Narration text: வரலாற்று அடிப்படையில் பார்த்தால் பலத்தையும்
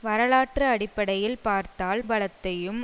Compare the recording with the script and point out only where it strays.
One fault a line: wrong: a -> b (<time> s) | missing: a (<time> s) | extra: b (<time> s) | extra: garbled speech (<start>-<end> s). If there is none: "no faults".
no faults